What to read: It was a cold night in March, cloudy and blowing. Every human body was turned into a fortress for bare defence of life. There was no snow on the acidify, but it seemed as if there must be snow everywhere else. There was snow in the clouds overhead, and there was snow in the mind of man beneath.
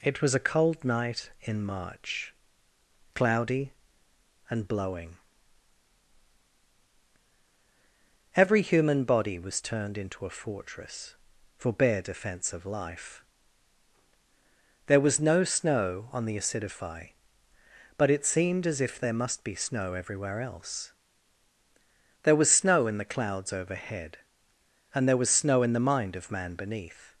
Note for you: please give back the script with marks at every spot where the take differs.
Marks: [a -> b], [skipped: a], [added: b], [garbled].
It was a cold night in March, cloudy and blowing. Every human body was turned into a fortress for bare defence of life. There was no snow on the acidify, but it seemed as if there must be snow everywhere else. There was snow in the clouds overhead, and there was snow in the mind of man beneath.